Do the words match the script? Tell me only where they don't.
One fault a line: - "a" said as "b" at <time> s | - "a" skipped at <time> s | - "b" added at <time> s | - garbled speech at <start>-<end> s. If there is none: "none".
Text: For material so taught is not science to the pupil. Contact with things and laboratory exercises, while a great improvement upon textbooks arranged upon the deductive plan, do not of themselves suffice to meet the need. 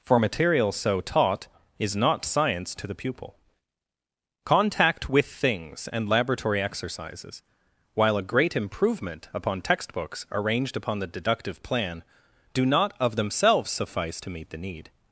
none